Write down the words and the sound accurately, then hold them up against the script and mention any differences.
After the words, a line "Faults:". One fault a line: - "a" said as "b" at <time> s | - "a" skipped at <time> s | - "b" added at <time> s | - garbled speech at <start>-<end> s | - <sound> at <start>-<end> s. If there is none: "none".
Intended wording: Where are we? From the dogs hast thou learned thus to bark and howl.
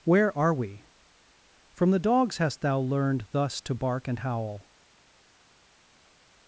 Where are we? From the dogs hast thou learned thus to bark and howl.
Faults:
none